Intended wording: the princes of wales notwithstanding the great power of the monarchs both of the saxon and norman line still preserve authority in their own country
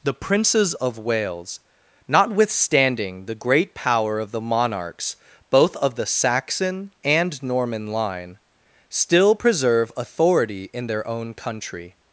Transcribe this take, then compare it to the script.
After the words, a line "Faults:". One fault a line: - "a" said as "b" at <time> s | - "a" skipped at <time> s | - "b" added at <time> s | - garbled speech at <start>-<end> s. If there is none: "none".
the princes of wales notwithstanding the great power of the monarchs both of the saxon and norman line still preserve authority in their own country
Faults:
none